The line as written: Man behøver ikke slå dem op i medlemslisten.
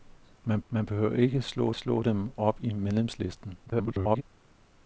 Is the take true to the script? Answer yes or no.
no